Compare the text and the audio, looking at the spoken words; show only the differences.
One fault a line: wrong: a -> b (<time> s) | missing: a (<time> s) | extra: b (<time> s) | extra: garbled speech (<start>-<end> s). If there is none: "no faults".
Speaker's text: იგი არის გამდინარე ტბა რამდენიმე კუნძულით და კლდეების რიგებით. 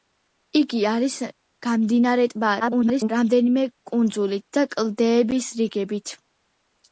extra: garbled speech (2.6-3.1 s)